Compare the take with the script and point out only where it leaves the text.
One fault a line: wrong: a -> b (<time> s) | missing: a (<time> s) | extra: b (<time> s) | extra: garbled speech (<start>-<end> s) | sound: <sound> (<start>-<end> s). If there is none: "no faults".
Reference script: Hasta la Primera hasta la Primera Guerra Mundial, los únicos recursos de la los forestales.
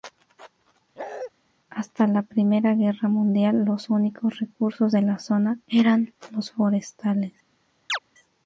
sound: bark (1.0-1.3 s)
missing: hasta la Primera (2.7 s)
extra: zona eran (5.2 s)
sound: chirp (7.9-8.0 s)